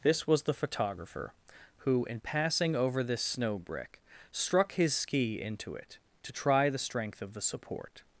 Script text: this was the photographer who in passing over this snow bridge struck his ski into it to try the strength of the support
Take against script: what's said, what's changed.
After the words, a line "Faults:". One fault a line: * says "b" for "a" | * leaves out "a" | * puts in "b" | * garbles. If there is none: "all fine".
this was the photographer who in passing over this snow brick struck his ski into it to try the strength of the support
Faults:
* says "brick" for "bridge"